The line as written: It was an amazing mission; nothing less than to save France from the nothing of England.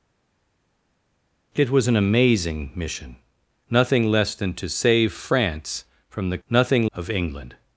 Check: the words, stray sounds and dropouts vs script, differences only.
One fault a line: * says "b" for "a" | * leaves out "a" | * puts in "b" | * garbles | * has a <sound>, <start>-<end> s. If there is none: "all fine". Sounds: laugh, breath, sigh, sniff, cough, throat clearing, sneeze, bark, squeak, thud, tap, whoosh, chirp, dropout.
all fine